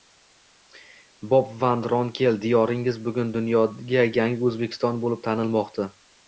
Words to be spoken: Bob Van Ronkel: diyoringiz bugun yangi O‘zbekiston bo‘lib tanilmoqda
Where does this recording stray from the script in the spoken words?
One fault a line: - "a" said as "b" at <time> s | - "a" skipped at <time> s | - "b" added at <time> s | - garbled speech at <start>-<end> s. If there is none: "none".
- "dunyoga" added at 3.4 s